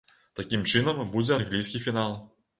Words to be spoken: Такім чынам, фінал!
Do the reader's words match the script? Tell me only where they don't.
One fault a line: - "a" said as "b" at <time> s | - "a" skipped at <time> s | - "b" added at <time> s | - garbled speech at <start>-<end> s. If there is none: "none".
- "будзе англійскі" added at 1.2 s